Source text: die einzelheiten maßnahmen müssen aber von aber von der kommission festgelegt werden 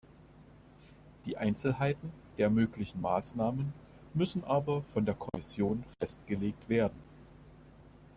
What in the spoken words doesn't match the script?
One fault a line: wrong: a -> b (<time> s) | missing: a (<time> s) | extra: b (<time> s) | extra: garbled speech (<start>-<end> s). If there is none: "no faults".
extra: der möglichen (2.4 s)
missing: aber von (5.0 s)